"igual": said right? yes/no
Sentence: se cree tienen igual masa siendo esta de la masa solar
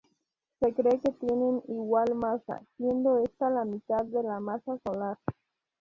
yes